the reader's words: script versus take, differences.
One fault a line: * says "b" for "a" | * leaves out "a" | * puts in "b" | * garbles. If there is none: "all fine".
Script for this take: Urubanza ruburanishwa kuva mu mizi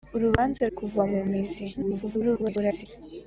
* leaves out "ruburanishwa"
* garbles